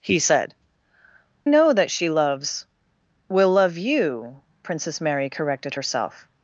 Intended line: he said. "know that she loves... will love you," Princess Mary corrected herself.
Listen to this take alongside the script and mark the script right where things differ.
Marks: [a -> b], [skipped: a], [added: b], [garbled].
he said. "know that she loves... will love you," Princess Mary corrected herself.